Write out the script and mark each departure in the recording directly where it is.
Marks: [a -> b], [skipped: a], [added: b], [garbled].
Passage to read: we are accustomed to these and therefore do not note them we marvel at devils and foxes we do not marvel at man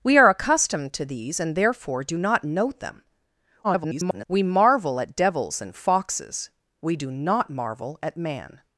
we are accustomed to these and therefore do not note them [garbled] we marvel at devils and foxes we do not marvel at man